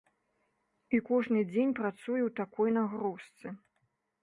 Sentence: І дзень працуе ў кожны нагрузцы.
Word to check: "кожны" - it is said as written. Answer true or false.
false